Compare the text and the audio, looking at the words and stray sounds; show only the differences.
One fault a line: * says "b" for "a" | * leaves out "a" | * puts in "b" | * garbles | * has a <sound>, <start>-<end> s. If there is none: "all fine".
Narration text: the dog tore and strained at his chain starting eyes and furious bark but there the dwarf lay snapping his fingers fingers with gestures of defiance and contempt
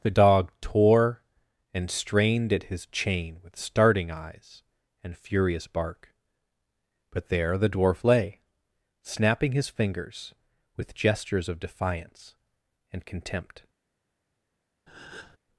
* puts in "with"
* leaves out "fingers"
* has a breath, 14.9-15.4 s